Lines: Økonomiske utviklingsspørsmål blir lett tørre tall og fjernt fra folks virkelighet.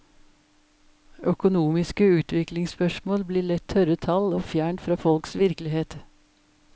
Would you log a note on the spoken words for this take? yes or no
no